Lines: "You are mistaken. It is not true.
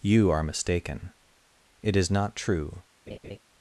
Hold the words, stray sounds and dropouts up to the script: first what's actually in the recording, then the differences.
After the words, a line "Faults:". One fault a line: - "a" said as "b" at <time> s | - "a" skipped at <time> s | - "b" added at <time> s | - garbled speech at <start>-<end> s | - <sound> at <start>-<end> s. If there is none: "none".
"You are mistaken. It is not true.
Faults:
- laugh at 3.1-3.4 s